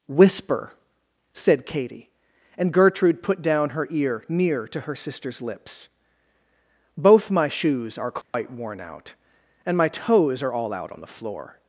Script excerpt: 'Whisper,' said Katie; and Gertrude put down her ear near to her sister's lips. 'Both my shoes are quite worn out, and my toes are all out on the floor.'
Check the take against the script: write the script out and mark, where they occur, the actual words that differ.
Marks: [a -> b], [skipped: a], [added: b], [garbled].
'Whisper,' said Katie; and Gertrude put down her ear near to her sister's lips. 'Both my shoes are quite worn out, and my toes are all out on the floor.'